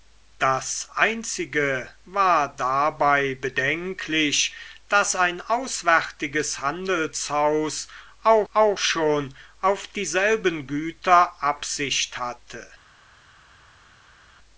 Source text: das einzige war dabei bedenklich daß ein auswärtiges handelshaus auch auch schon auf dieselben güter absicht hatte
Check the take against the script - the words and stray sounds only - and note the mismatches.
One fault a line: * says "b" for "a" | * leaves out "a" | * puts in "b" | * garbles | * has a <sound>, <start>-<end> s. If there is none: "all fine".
all fine